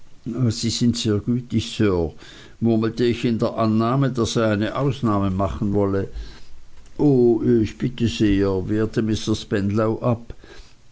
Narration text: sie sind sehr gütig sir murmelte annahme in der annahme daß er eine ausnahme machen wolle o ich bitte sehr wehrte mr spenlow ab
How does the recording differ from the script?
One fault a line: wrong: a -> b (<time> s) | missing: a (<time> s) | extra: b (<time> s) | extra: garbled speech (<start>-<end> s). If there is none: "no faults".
wrong: annahme -> ich (3.0 s)